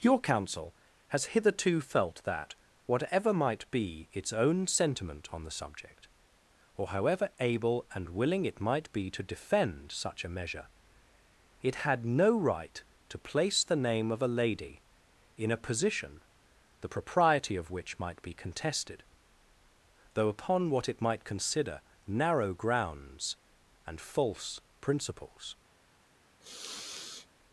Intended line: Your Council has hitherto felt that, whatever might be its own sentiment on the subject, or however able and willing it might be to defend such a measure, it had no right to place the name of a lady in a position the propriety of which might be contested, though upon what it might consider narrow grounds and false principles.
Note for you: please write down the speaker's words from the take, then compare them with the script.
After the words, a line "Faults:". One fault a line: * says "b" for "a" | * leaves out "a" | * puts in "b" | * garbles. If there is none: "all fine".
Your Council has hitherto felt that, whatever might be its own sentiment on the subject, or however able and willing it might be to defend such a measure, it had no right to place the name of a lady in a position the propriety of which might be contested, though upon what it might consider narrow grounds and false principles.
Faults:
all fine